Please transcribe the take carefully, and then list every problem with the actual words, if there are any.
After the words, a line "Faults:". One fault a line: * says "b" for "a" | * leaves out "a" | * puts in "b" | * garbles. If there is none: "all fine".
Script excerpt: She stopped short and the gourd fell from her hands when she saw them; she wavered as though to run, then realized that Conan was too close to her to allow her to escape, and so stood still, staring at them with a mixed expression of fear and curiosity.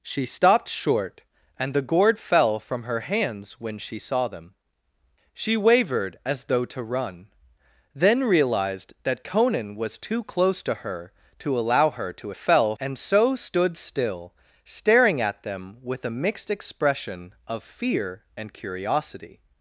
She stopped short and the gourd fell from her hands when she saw them; she wavered as though to run, then realized that Conan was too close to her to allow her to fell, and so stood still, staring at them with a mixed expression of fear and curiosity.
Faults:
* says "fell" for "escape"